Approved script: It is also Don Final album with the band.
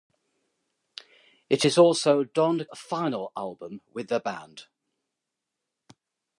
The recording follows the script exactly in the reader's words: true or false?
true